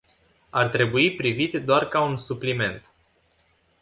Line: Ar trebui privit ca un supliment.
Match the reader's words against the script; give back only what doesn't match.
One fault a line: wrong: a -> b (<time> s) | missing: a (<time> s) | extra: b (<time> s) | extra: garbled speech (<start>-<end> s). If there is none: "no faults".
extra: doar (1.6 s)